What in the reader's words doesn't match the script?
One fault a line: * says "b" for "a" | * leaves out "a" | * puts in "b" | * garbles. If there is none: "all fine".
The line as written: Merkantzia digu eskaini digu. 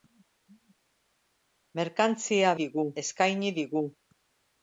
all fine